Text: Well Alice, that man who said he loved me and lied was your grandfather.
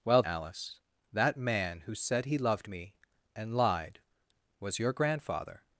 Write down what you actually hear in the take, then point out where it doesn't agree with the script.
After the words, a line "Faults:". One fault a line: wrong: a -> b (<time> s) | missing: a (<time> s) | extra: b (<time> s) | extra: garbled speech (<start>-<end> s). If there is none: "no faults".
Well Alice, that man who said he loved me and lied was your grandfather.
Faults:
no faults